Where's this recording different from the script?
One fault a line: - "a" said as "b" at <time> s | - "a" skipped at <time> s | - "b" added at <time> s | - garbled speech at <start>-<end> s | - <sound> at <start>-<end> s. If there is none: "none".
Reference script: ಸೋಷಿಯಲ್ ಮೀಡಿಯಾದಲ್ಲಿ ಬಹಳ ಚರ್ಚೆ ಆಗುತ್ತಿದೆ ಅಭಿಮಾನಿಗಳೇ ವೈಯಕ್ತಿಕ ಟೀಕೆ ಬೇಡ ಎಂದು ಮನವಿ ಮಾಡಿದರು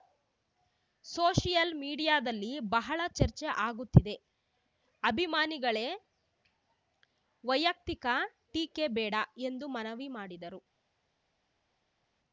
none